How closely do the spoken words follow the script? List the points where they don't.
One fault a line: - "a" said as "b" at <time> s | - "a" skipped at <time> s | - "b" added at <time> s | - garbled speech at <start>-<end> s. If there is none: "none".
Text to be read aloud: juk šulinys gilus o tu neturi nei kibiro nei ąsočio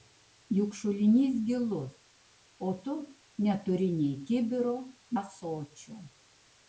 - "nei" skipped at 4.8 s